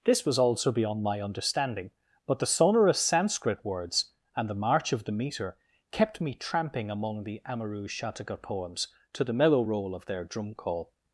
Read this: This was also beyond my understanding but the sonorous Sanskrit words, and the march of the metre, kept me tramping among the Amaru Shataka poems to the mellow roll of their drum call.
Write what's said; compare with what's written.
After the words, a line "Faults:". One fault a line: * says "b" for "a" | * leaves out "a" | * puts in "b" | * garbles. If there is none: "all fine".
This was also beyond my understanding but the sonorous Sanskrit words, and the march of the metre, kept me tramping among the Amaru Shataka poems to the mellow roll of their drum call.
Faults:
all fine